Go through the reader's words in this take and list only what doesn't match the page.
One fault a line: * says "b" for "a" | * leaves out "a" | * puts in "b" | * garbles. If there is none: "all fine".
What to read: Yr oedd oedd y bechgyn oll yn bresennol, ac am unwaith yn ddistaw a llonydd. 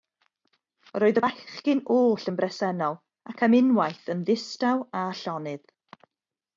* leaves out "oedd"